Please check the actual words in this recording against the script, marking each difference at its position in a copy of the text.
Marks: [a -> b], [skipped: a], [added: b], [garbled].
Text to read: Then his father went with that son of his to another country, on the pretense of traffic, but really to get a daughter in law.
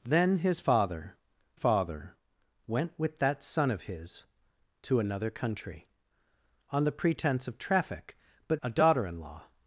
Then his father [added: father] went with that son of his to another country, on the pretense of traffic, but [skipped: really to get] a daughter in law.